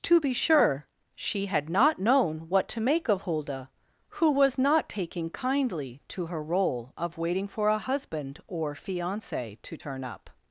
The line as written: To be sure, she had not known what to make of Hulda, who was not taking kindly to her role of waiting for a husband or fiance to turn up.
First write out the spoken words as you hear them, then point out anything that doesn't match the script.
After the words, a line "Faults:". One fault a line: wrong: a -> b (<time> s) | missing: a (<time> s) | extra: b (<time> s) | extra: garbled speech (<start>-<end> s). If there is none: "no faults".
To be sure, she had not known what to make of Hulda, who was not taking kindly to her role of waiting for a husband or fiance to turn up.
Faults:
no faults